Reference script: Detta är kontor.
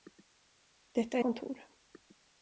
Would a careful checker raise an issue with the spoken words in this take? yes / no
no